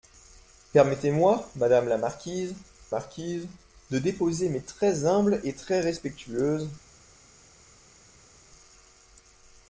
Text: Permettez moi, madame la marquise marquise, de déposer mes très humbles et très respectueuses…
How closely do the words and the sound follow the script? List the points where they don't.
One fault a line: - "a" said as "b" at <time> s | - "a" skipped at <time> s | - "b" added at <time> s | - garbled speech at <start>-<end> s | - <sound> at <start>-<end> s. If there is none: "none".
none